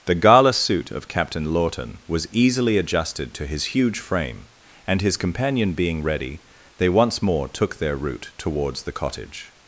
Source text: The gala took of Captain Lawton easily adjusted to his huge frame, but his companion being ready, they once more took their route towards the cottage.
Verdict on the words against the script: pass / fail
fail